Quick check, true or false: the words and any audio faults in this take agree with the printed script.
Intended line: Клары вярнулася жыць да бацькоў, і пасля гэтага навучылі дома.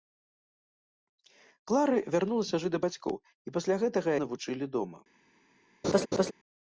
false